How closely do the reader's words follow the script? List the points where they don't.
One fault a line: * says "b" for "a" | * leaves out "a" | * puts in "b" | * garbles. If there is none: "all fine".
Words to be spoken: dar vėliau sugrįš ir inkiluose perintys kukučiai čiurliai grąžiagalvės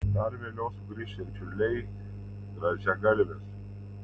* leaves out "inkiluose perintys kukučiai"